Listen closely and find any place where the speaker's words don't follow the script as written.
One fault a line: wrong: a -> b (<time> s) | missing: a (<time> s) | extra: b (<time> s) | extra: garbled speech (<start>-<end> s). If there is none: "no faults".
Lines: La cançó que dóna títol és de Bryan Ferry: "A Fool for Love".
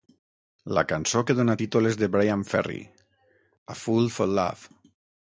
no faults